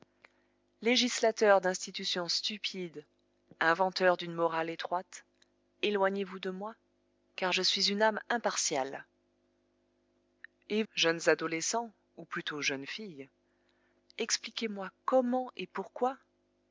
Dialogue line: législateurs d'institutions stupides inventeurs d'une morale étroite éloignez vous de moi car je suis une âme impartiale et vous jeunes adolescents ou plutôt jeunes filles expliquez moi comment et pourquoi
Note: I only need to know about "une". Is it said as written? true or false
true